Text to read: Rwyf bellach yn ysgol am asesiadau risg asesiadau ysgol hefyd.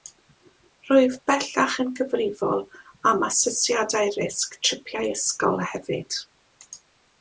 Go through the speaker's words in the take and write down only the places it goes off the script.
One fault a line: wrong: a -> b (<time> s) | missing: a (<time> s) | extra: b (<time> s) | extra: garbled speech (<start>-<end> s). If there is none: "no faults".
wrong: ysgol -> gyfrifol (2.0 s)
wrong: asesiadau -> tripiau (4.7 s)